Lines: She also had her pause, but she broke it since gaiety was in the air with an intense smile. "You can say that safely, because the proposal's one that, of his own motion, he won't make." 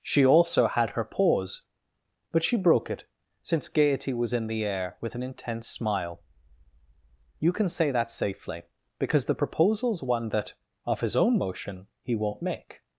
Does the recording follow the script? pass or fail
pass